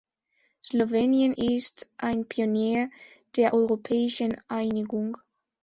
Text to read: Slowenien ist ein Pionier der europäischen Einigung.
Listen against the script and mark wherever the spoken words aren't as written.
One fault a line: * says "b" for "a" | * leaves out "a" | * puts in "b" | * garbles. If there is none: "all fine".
all fine